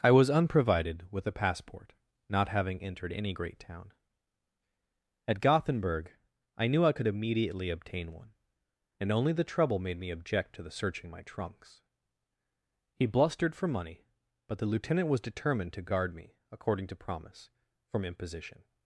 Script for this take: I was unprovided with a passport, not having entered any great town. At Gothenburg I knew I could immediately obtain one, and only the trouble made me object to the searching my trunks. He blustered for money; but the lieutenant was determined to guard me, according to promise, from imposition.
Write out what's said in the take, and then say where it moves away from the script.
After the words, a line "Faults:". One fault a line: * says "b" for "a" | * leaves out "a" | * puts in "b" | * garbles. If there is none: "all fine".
I was unprovided with a passport, not having entered any great town. At Gothenburg I knew I could immediately obtain one, and only the trouble made me object to the searching my trunks. He blustered for money; but the lieutenant was determined to guard me, according to promise, from imposition.
Faults:
all fine